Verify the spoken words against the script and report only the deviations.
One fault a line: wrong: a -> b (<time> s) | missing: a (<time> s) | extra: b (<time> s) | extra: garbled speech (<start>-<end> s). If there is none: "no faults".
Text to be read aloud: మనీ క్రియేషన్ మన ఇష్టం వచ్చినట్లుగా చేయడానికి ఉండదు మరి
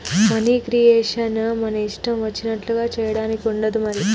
no faults